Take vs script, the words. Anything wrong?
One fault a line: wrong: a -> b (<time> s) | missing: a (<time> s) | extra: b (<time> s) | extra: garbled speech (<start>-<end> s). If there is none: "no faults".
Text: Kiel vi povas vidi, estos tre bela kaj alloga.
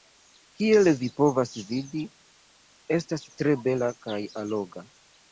wrong: estos -> estas (3.0 s)